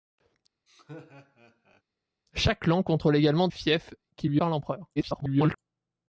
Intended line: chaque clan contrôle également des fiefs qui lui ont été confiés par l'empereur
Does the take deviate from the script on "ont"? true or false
true